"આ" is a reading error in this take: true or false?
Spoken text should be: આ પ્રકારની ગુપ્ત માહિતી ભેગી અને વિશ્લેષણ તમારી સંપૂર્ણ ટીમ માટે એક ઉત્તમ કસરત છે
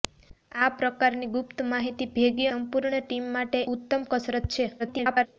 false